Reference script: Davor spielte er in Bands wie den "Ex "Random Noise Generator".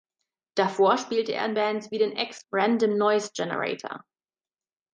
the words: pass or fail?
pass